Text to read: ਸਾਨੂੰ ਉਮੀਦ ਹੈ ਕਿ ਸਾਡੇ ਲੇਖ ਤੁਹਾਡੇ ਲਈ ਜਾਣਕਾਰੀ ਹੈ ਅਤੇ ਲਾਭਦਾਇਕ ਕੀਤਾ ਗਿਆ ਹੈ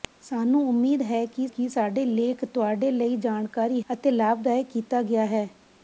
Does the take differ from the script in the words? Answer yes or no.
yes